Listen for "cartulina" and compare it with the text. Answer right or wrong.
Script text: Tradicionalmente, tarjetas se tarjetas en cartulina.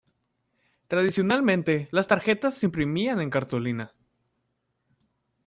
right